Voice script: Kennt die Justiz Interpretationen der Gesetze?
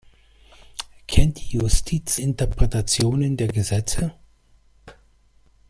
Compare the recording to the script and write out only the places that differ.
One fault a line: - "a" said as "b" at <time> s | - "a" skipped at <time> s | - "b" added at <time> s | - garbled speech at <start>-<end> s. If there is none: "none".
none